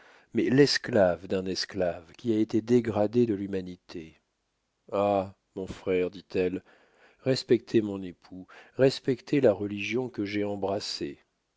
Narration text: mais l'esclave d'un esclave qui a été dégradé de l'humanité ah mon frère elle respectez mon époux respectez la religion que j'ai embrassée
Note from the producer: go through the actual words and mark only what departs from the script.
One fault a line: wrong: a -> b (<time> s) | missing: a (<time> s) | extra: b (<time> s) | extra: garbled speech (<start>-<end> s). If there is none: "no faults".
extra: dit (6.1 s)